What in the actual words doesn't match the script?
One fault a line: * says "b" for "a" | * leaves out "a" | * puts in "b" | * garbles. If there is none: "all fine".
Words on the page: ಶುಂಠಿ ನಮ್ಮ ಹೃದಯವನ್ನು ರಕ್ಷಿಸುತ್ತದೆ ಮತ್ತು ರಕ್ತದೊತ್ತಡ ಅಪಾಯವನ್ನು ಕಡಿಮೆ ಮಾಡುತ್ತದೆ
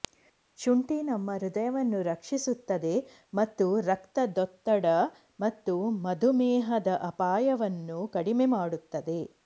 * puts in "ಮತ್ತು ಮಧುಮೇಹದ"